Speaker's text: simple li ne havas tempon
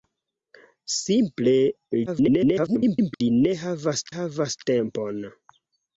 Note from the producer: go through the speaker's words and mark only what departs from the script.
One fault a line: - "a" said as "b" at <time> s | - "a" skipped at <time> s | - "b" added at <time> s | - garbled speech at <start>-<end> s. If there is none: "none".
- garbled speech at 2.1-3.2 s
- "havas" added at 4.2 s